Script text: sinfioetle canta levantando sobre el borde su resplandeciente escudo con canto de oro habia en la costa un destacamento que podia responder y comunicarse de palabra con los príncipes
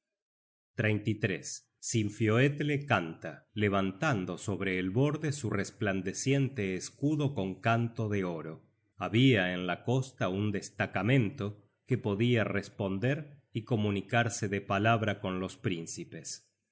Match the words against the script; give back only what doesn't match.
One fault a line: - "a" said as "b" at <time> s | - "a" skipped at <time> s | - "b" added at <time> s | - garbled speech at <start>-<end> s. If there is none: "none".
none